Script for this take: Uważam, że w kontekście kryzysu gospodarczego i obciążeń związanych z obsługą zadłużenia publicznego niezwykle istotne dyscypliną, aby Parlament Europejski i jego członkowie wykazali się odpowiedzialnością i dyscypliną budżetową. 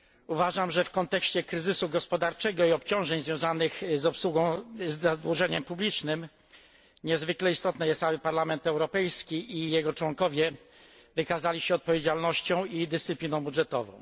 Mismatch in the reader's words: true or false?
true